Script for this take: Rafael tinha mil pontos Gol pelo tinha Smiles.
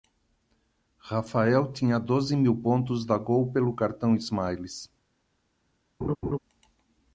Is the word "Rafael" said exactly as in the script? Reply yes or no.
yes